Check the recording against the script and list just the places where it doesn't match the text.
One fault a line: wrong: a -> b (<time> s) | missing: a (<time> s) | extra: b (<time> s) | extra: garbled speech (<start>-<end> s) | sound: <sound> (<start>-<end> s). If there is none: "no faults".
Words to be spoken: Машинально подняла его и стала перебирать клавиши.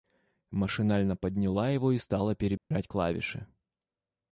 sound: dropout (2.6-2.7 s)